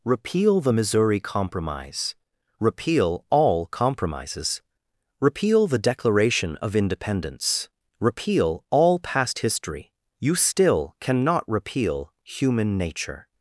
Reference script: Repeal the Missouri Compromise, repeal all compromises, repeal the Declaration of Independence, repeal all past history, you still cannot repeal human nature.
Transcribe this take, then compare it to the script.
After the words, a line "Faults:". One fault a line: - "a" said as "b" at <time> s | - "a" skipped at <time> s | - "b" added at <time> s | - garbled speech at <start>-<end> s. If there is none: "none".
Repeal the Missouri Compromise, repeal all compromises, repeal the Declaration of Independence, repeal all past history, you still cannot repeal human nature.
Faults:
none